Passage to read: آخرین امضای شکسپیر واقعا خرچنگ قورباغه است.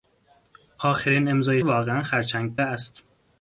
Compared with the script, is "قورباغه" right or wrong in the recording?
wrong